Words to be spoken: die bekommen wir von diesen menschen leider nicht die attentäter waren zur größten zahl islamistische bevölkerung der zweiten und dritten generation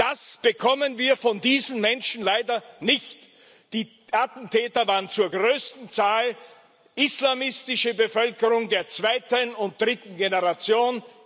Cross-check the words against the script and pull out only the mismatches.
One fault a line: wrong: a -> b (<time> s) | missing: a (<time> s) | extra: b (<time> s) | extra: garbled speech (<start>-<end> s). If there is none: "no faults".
wrong: die -> das (0.0 s)